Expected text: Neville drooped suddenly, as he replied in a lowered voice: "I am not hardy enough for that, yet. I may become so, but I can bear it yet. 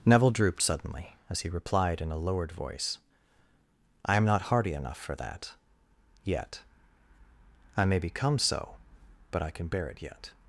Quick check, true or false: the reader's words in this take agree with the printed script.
true